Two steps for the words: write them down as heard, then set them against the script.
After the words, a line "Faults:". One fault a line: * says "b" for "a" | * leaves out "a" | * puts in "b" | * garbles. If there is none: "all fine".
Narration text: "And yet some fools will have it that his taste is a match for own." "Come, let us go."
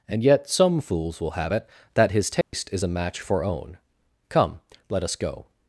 "And yet some fools will have it that his taste is a match for own." "Come, let us go."
Faults:
all fine